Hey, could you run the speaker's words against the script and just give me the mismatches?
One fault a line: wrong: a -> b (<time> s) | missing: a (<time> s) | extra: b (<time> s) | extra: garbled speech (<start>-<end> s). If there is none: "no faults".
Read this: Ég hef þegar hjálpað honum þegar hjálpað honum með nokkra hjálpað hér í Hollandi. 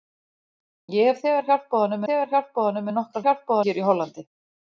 no faults